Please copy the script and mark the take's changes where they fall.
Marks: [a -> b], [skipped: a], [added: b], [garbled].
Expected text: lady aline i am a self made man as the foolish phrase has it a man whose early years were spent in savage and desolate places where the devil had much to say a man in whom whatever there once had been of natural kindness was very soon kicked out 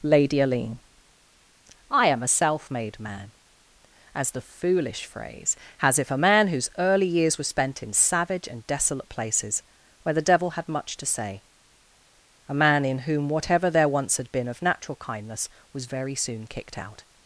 lady aline i am a self made man as the foolish phrase has [it -> if] a man whose early years were spent in savage and desolate places where the devil had much to say a man in whom whatever there once had been of natural kindness was very soon kicked out